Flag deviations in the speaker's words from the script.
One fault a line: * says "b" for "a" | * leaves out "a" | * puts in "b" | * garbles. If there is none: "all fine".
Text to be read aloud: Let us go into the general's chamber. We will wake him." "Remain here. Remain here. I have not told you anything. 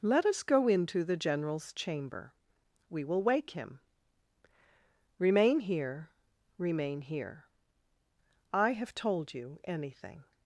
* leaves out "not"